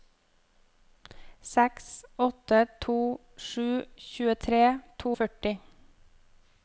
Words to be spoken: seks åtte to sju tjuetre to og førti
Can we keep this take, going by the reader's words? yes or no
yes